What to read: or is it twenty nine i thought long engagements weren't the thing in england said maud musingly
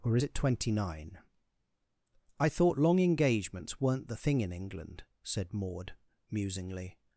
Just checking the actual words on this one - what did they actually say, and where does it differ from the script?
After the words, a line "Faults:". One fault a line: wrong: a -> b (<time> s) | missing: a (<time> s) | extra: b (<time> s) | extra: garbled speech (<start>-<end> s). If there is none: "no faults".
or it twenty nine i thought long engagements weren't the thing in england said maud musingly
Faults:
missing: is (0.2 s)